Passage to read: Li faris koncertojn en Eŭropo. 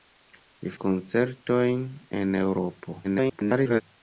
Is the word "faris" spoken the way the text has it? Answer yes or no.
no